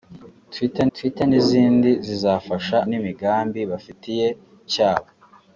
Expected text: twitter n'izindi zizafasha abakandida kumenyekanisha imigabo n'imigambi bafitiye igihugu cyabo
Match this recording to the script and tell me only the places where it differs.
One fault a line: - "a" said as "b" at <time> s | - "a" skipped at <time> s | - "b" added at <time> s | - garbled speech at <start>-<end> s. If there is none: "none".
- "twitter" added at 0.9 s
- "abakandida kumenyekanisha imigabo" skipped at 2.8 s
- "igihugu" skipped at 4.3 s